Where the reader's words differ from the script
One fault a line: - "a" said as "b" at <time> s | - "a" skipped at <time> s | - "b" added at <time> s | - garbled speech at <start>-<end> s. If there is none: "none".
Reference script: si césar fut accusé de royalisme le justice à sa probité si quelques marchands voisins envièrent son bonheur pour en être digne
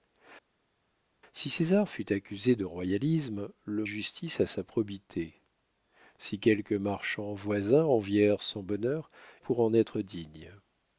none